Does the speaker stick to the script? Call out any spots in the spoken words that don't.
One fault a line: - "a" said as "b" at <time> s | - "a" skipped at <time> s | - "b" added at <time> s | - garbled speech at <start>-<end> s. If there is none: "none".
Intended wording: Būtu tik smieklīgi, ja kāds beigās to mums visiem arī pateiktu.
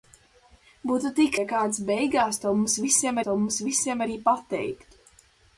- "smieklīgi" skipped at 1.4 s
- "to mums visiem" added at 3.3 s